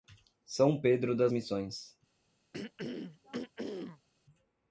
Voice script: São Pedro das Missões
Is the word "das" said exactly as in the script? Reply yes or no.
yes